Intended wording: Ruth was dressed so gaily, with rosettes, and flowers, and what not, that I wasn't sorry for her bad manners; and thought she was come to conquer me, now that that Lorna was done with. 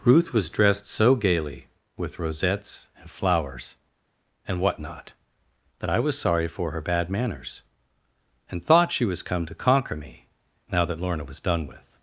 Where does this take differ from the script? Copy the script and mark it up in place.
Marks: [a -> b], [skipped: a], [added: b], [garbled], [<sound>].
Ruth was dressed so gaily, with rosettes, and flowers, and what not, that I [wasn't -> was] sorry for her bad manners; and thought she was come to conquer me, now that [skipped: that] Lorna was done with.